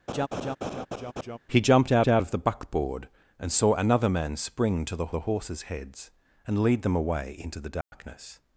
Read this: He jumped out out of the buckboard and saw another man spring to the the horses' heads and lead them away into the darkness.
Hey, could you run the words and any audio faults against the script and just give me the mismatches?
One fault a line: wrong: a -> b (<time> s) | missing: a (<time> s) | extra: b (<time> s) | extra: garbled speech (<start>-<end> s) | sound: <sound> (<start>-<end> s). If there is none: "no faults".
sound: laugh (0.1-1.4 s)
sound: dropout (7.8-7.9 s)